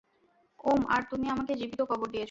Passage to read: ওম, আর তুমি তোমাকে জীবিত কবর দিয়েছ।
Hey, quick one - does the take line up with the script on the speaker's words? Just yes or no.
no